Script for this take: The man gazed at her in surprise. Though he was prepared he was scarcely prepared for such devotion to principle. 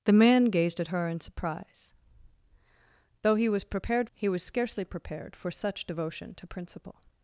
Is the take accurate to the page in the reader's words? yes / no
yes